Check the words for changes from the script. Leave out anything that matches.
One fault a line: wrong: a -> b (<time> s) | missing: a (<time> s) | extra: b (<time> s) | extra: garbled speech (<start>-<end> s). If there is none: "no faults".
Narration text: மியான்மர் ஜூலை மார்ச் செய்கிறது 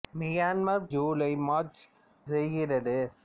no faults